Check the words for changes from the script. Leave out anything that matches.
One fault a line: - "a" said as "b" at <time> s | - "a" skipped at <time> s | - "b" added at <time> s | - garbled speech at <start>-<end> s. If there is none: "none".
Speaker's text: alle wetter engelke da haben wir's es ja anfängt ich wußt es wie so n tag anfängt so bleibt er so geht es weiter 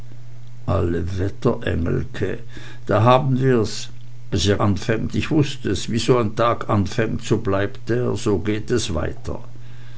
none